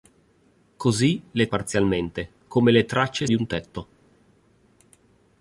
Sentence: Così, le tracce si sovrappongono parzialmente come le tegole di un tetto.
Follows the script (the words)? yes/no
no